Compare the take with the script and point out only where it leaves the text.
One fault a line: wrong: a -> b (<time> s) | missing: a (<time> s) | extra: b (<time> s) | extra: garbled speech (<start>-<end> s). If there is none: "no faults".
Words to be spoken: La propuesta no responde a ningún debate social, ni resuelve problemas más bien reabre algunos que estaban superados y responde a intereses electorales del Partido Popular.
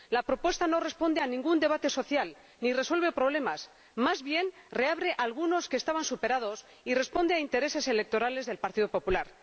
no faults